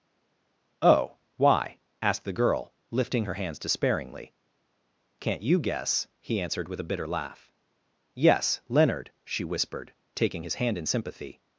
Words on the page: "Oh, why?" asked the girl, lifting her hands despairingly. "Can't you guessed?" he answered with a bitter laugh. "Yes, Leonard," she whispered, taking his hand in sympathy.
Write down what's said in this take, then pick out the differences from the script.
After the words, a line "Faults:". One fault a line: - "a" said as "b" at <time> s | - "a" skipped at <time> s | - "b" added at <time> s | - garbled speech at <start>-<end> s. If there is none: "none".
"Oh, why?" asked the girl, lifting her hands despairingly. "Can't you guess?" he answered with a bitter laugh. "Yes, Leonard," she whispered, taking his hand in sympathy.
Faults:
- "guessed" said as "guess" at 5.6 s